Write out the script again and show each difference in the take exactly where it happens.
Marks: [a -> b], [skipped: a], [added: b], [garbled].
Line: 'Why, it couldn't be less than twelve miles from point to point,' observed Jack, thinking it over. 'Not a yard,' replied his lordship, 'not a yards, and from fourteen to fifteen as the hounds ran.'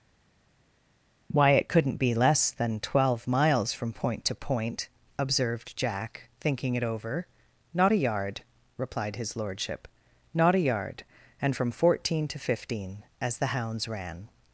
'Why, it couldn't be less than twelve miles from point to point,' observed Jack, thinking it over. 'Not a yard,' replied his lordship, 'not a [yards, -> yard] and from fourteen to fifteen as the hounds ran.'